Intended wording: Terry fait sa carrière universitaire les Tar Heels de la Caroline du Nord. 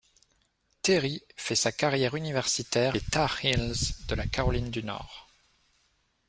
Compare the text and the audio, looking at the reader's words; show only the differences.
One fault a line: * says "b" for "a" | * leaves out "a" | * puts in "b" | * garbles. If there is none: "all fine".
all fine